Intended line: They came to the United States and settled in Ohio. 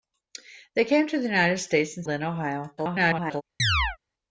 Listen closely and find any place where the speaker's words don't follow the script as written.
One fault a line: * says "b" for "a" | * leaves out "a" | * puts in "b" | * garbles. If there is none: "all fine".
* leaves out "settled"
* garbles